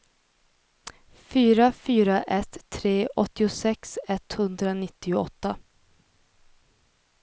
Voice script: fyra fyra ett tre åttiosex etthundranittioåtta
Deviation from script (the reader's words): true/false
false